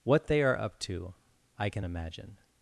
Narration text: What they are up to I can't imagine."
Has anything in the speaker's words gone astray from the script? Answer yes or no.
yes